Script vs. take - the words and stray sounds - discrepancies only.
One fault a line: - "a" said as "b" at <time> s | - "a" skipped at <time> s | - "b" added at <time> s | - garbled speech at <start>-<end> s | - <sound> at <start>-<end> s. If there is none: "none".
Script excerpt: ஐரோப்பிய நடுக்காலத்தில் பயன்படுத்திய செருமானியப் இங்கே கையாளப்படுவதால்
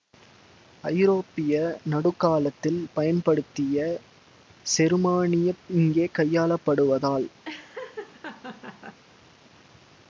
- laugh at 7.5-9.0 s